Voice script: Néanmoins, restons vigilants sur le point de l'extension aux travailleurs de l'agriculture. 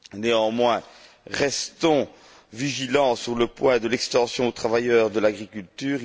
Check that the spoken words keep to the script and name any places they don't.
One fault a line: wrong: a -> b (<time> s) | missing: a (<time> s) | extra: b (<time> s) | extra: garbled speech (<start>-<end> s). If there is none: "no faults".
no faults